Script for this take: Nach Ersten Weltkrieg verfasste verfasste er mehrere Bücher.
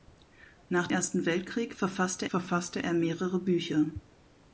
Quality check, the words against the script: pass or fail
pass